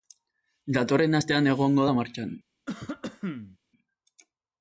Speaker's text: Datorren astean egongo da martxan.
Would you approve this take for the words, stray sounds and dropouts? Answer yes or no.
no